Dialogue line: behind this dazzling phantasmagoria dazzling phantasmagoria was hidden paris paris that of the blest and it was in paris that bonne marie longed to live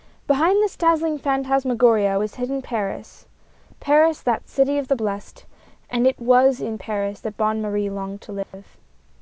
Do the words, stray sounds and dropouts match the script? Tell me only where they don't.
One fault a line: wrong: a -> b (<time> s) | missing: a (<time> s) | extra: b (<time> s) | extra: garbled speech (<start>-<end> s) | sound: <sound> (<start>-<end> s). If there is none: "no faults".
missing: dazzling phantasmagoria (2.2 s)
extra: city (4.5 s)
sound: dropout (8.4-8.5 s)